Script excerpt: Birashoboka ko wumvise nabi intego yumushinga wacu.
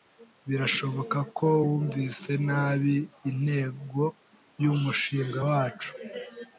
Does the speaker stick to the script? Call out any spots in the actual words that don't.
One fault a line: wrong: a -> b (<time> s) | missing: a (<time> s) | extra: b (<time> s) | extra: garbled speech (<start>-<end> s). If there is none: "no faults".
no faults